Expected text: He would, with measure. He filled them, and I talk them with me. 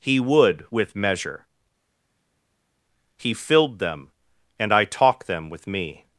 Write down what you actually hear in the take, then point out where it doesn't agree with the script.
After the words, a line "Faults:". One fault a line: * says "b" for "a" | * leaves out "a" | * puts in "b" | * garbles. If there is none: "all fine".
He would, with measure. He filled them, and I talk them with me.
Faults:
all fine